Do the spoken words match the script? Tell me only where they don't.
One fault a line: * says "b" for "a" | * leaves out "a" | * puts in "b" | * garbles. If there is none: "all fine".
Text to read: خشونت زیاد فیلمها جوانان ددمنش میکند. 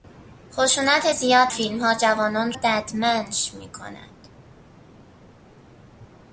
all fine